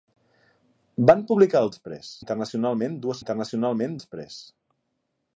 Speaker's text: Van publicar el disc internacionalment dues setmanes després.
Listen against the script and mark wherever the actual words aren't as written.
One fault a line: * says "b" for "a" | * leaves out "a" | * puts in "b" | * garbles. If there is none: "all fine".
* says "després" for "disc"
* says "internacionalment" for "setmanes"